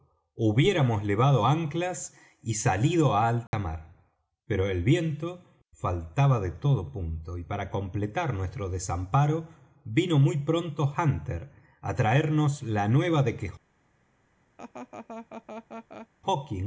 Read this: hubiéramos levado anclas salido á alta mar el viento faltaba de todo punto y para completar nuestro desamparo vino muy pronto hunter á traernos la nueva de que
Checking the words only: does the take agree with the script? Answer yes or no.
no